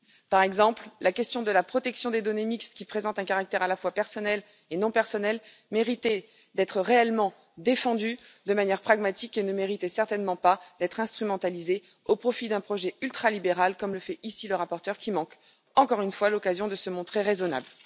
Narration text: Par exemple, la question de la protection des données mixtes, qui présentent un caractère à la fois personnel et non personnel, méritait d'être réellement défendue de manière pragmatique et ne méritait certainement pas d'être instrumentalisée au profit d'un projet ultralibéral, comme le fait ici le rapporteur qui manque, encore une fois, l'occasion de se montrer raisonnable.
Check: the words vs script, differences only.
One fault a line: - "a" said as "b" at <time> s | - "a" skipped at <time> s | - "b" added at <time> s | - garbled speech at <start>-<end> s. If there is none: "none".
none